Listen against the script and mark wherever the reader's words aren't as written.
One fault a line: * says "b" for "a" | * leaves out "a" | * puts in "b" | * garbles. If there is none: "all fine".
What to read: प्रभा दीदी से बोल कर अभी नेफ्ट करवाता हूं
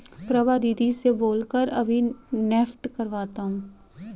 all fine